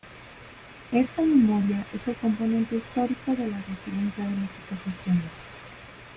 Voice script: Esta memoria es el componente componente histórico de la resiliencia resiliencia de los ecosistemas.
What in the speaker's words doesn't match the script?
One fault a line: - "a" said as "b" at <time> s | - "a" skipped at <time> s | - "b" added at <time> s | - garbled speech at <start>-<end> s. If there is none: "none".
- "componente" skipped at 2.8 s
- "resiliencia" skipped at 4.2 s